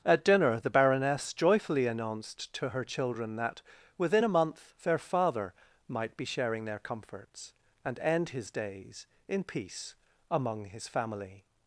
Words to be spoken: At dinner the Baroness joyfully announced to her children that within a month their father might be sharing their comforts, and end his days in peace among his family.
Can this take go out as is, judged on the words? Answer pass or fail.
pass